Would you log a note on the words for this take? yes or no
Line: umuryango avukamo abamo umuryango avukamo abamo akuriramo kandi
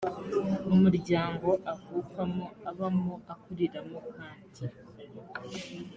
yes